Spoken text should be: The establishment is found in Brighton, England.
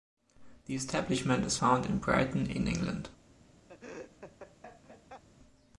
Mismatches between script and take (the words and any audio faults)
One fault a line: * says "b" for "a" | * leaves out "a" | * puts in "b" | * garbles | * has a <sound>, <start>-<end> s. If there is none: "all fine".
* puts in "in"
* has a laugh, 3.7-5.2 s